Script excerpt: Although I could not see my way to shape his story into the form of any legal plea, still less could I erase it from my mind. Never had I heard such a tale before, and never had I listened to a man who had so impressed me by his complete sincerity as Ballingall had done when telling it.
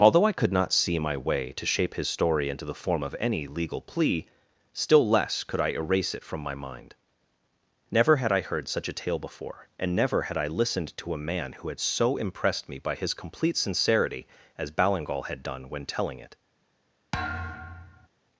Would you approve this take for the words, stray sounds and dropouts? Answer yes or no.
no